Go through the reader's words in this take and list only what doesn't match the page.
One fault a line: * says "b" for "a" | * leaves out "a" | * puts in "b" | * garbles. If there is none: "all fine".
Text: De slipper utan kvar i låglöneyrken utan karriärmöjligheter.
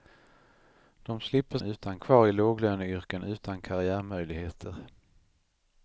all fine